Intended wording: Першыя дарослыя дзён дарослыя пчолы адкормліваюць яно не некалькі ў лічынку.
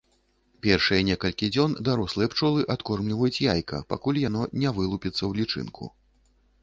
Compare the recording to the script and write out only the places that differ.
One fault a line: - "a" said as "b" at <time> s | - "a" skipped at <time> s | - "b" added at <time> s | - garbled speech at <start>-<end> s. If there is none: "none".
- "дарослыя" said as "некалькі" at 1.1 s
- "яйка пакуль" added at 3.5 s
- "некалькі" said as "вылупіцца" at 4.8 s